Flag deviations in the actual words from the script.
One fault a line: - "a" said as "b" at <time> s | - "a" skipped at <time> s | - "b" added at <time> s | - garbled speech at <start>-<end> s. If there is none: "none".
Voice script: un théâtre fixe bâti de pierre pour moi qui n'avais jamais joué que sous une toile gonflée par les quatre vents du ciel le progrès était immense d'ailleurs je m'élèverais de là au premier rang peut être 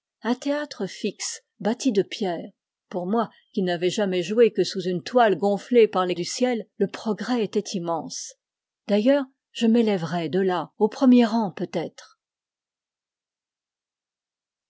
- "quatre vents" skipped at 6.2 s